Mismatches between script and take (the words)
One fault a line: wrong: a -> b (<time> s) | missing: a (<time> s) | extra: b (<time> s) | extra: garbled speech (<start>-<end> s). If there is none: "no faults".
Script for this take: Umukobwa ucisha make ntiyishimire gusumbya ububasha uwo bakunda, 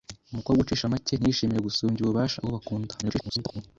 extra: garbled speech (3.0-3.6 s)